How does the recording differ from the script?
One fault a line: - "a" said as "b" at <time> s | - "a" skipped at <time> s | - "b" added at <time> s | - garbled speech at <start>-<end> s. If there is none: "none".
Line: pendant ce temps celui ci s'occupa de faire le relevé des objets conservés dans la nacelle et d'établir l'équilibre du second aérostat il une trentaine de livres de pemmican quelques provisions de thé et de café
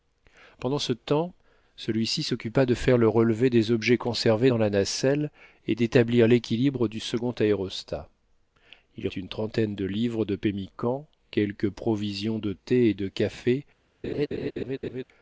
none